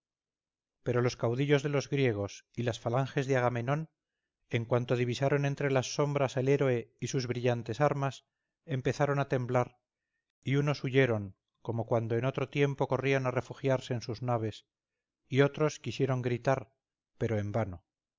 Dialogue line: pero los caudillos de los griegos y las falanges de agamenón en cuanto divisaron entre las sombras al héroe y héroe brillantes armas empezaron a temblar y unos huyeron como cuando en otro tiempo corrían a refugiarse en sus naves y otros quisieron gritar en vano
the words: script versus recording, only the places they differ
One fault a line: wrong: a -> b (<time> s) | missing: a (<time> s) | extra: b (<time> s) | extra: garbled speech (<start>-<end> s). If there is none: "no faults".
wrong: héroe -> sus (7.1 s)
extra: pero (17.2 s)